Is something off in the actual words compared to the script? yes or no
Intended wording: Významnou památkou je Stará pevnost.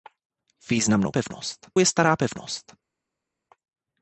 yes